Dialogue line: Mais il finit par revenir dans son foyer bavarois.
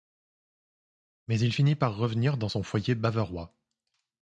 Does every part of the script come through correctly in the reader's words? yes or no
yes